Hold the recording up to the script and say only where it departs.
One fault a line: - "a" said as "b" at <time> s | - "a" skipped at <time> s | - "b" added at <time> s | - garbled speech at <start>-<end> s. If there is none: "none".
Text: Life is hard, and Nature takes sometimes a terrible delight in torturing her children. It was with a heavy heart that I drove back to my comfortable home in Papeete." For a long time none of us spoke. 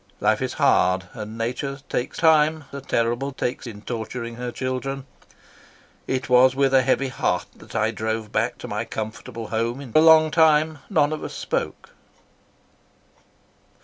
- "sometimes" said as "time" at 2.2 s
- "delight" said as "takes" at 3.4 s
- "Papeete For" skipped at 9.9 s